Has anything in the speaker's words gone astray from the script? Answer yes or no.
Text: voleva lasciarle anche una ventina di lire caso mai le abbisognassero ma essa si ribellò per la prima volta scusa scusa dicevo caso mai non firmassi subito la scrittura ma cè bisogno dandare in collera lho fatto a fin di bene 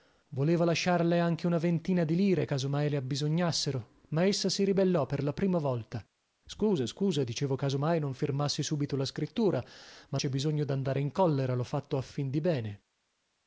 no